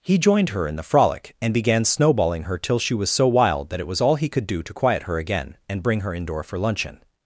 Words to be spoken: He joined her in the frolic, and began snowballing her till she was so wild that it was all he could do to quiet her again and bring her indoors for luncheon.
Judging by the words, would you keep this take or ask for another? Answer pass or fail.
fail